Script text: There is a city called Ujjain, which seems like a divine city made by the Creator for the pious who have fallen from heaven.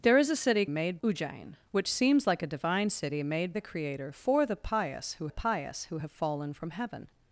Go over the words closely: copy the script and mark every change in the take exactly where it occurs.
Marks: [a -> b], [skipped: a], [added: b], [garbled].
There is a city [called -> made] Ujjain, which seems like a divine city made [skipped: by] the Creator for the pious who [added: pious who] have fallen from heaven.